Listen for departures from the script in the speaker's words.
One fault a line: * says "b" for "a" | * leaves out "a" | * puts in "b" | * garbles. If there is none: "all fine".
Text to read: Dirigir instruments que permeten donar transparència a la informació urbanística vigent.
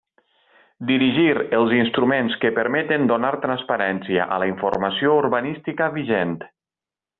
* puts in "els"